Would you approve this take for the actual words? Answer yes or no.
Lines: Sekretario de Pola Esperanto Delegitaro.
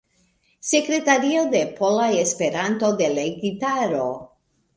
yes